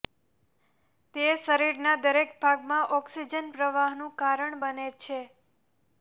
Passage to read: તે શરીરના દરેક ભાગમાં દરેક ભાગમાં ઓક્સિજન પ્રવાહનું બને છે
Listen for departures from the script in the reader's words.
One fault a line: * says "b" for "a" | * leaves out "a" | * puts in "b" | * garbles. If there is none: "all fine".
* leaves out "દરેક ભાગમાં"
* puts in "કારણ"